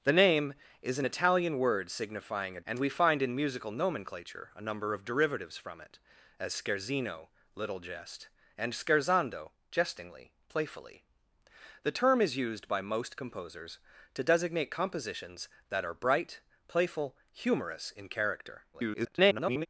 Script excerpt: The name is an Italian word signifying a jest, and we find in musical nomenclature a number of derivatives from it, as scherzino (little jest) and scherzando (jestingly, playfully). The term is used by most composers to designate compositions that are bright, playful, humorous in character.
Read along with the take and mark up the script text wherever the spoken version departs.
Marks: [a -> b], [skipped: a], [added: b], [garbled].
The name is an Italian word signifying a [skipped: jest,] and we find in musical nomenclature a number of derivatives from it, as scherzino (little jest) and scherzando (jestingly, playfully). The term is used by most composers to designate compositions that are bright, playful, humorous in character. [garbled]